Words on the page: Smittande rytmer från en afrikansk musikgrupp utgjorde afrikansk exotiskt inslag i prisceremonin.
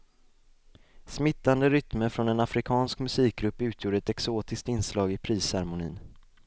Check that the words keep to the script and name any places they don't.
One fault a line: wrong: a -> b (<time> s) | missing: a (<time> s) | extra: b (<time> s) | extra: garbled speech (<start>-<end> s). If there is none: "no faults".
wrong: afrikansk -> ett (4.0 s)